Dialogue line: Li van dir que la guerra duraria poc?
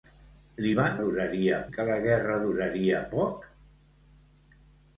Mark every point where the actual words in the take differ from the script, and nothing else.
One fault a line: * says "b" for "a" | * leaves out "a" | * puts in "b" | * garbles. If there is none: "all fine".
* says "duraria" for "dir"